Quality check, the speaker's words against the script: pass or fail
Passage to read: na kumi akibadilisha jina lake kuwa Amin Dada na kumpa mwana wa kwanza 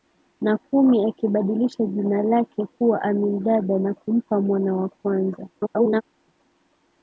fail